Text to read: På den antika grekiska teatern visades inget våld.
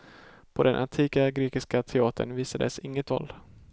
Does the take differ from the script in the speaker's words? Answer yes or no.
no